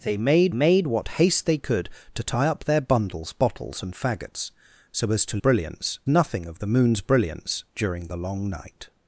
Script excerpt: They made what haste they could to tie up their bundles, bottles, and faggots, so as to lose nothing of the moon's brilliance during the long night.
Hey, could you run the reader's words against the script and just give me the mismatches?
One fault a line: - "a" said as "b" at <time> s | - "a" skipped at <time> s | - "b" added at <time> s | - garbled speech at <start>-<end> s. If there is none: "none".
- "made" added at 0.5 s
- "lose" said as "brilliance" at 5.4 s